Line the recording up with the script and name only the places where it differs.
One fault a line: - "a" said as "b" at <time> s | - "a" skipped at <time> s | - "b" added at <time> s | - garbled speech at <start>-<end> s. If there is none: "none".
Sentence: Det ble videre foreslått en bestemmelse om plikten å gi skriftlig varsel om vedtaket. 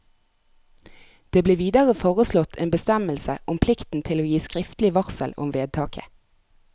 - "til" added at 4.1 s